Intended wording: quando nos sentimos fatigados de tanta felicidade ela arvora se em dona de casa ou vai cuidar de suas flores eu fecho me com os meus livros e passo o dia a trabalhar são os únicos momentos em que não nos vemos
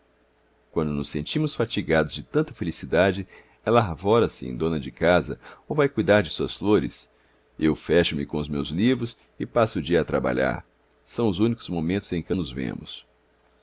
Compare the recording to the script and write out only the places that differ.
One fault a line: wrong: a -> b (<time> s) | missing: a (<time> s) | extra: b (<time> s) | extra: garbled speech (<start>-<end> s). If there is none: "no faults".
missing: não (12.3 s)